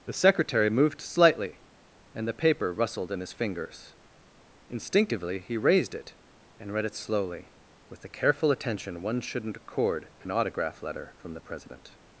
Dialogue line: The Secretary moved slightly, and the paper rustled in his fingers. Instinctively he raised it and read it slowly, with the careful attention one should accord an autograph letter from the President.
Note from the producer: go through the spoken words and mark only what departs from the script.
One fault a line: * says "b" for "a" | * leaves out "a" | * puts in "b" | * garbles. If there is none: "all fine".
* says "shouldn't" for "should"